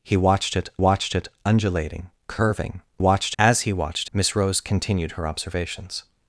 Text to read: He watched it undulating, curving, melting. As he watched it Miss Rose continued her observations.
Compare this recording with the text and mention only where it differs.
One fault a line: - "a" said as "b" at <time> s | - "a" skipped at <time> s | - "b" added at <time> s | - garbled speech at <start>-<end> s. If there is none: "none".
- "watched it" added at 0.8 s
- "melting" said as "watched" at 3.0 s
- "it" skipped at 4.1 s